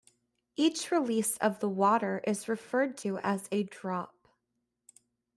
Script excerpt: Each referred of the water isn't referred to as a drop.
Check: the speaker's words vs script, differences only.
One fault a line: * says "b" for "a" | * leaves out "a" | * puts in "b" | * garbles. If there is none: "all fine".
* says "release" for "referred"
* says "is" for "isn't"